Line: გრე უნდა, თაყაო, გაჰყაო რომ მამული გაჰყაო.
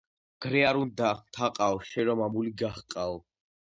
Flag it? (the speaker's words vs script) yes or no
yes